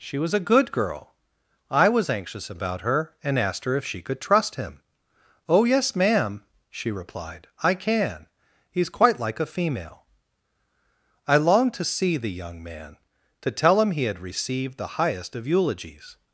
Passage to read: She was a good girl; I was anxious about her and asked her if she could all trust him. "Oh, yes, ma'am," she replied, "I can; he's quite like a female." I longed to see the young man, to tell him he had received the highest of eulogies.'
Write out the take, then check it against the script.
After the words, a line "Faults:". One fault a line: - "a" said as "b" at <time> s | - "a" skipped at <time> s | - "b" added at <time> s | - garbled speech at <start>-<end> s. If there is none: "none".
She was a good girl; I was anxious about her and asked her if she could trust him. "Oh, yes, ma'am," she replied, "I can; he's quite like a female." I longed to see the young man, to tell him he had received the highest of eulogies.'
Faults:
- "all" skipped at 4.2 s